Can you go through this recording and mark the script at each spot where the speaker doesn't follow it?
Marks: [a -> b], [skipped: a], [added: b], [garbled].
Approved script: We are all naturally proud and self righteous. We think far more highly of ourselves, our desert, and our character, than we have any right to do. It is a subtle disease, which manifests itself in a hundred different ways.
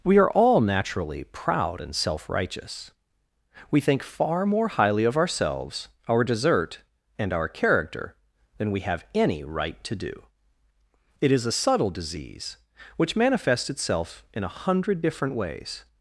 We are all naturally proud and self righteous. We think far more highly of ourselves, our desert, and our character, than we have any right to do. It is a subtle disease, which manifests itself in a hundred different ways.